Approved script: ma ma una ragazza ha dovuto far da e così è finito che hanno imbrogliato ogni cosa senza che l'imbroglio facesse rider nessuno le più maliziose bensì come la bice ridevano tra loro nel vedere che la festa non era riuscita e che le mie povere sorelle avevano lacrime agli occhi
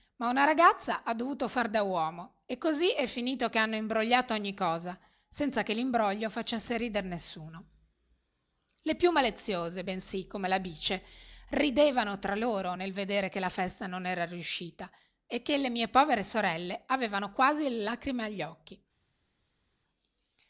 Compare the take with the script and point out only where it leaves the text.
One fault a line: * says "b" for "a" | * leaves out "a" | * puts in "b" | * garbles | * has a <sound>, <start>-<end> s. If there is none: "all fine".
* leaves out "ma"
* puts in "uomo"
* puts in "quasi le"